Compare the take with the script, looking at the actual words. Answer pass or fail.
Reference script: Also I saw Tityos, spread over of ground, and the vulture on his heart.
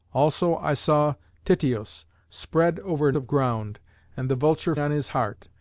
pass